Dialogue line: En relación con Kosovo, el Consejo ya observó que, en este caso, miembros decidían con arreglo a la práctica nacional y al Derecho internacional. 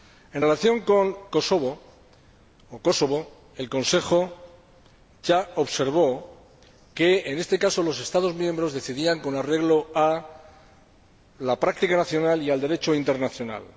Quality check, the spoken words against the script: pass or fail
fail